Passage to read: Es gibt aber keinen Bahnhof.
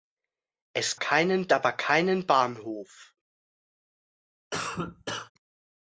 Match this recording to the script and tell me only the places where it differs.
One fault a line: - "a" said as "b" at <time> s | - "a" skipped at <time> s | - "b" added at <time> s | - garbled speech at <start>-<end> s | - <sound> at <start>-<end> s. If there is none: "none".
- "gibt" said as "keinen" at 0.9 s
- cough at 4.5-5.3 s